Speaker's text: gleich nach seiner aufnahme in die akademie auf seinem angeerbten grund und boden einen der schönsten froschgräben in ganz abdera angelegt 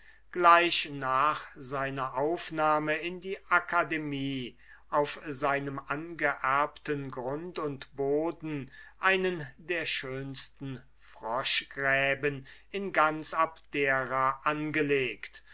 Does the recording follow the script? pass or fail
pass